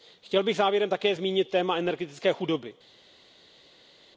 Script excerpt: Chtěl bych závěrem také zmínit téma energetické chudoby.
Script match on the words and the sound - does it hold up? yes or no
yes